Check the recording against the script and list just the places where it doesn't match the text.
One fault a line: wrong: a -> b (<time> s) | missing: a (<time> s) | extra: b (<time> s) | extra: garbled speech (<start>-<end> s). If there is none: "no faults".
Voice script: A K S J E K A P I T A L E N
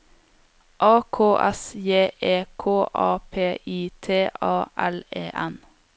no faults